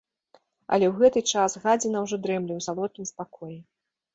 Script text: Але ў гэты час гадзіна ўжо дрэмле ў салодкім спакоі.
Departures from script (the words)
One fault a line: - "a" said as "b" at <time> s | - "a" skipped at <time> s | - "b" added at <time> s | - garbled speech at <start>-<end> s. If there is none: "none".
none